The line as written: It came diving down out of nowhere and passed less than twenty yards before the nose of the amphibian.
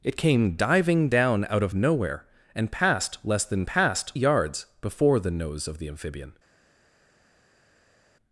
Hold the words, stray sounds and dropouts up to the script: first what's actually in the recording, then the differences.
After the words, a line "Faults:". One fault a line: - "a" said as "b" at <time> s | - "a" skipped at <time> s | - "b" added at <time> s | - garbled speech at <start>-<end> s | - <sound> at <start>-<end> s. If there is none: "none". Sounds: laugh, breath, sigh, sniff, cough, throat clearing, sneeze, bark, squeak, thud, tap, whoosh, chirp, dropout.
It came diving down out of nowhere and passed less than passed yards before the nose of the amphibian.
Faults:
- "twenty" said as "passed" at 3.7 s